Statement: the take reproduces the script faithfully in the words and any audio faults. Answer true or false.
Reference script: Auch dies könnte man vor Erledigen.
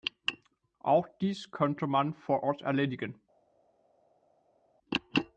false